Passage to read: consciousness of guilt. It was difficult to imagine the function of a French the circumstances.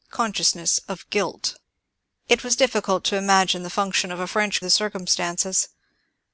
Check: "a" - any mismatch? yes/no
no